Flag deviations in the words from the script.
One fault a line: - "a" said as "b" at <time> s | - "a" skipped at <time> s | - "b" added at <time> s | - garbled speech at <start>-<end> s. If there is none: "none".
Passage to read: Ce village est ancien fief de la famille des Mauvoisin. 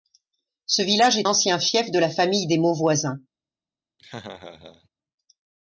none